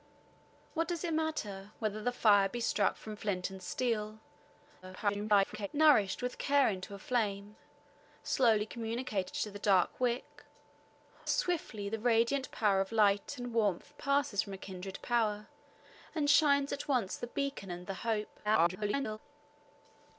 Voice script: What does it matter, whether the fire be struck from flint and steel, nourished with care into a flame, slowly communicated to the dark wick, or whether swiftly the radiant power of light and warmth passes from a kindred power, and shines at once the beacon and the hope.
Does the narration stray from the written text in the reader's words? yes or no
yes